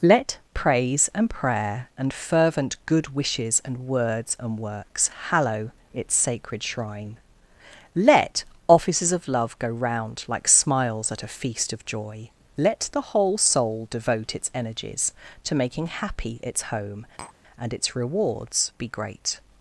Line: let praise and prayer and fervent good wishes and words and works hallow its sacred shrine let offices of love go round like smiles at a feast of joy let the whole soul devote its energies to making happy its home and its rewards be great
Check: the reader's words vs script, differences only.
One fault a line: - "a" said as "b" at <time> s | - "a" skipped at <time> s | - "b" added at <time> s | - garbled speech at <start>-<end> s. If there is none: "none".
none